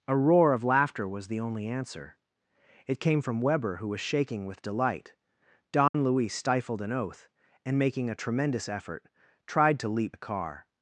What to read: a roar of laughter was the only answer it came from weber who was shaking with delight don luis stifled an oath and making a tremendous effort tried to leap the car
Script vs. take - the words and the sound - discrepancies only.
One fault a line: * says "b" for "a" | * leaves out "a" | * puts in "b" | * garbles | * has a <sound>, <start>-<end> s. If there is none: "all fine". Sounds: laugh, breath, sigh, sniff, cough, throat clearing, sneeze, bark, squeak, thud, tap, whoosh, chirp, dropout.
* has a dropout, 5.9-5.9 s